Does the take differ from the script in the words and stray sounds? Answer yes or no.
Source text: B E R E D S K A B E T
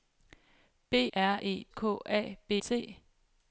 yes